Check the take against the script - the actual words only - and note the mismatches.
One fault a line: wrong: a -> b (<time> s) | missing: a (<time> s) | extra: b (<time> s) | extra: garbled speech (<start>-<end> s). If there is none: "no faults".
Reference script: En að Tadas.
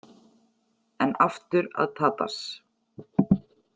extra: aftur (1.2 s)